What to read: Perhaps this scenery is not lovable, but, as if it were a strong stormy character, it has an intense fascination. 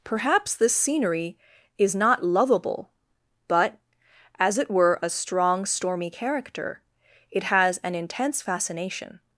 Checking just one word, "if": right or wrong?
wrong